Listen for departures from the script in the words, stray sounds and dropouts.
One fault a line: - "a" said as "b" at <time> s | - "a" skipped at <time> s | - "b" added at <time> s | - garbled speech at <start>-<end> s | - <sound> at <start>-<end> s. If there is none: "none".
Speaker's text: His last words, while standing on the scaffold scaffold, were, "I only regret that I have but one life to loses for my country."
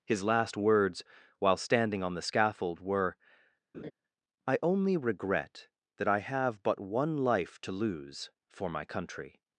- "scaffold" skipped at 2.8 s
- laugh at 3.7-3.9 s
- "loses" said as "lose" at 7.7 s